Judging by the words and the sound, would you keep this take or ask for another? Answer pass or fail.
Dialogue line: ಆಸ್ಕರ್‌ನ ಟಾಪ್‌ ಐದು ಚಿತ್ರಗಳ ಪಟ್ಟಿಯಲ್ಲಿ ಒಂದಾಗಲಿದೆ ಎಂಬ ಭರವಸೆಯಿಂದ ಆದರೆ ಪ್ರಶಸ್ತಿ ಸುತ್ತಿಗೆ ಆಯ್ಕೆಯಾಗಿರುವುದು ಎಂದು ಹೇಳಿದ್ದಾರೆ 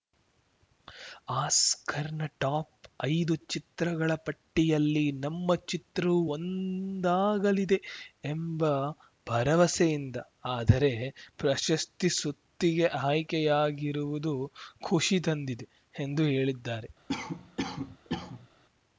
fail